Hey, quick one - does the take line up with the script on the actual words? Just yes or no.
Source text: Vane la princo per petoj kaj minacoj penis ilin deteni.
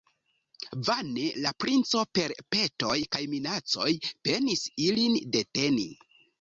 yes